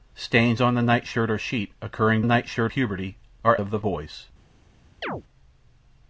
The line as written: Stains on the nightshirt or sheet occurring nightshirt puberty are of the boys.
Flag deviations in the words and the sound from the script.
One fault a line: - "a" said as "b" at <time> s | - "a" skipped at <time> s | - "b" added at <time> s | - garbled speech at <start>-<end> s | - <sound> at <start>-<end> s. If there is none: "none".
- chirp at 5.0-5.2 s